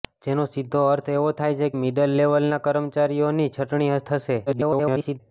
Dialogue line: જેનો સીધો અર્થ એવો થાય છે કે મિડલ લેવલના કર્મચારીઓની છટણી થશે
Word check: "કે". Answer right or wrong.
wrong